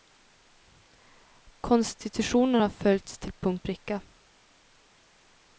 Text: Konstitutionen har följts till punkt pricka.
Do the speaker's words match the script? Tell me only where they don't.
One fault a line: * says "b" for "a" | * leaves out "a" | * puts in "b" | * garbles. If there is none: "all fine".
all fine